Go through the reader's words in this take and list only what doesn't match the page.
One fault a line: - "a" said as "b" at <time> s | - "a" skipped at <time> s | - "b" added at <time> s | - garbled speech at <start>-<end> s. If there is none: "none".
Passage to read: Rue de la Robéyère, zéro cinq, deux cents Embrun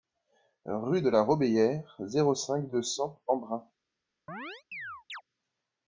none